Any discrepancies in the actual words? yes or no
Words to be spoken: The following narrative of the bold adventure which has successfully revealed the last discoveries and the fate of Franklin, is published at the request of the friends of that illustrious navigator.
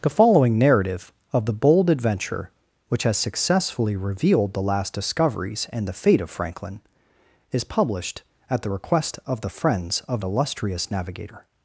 yes